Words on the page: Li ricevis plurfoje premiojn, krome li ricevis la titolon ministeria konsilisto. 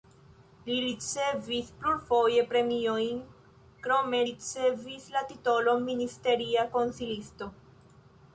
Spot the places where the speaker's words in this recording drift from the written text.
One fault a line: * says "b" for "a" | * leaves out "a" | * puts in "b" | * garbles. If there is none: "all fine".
* leaves out "li"